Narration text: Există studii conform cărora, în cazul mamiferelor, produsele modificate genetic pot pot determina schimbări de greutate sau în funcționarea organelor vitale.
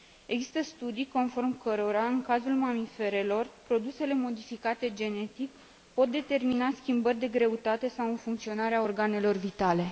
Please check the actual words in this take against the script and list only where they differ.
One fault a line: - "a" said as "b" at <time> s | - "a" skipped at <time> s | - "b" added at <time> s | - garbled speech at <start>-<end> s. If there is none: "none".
- "pot" skipped at 6.1 s